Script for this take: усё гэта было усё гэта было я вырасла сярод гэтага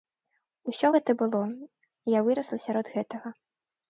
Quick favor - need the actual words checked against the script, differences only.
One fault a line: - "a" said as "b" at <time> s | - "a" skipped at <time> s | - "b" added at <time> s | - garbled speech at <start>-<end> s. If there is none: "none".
- "усё гэта было" skipped at 1.4 s